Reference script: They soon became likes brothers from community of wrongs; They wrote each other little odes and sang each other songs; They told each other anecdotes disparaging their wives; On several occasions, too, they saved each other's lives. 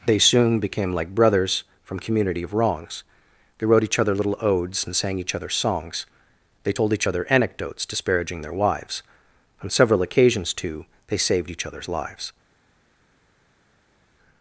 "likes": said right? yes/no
no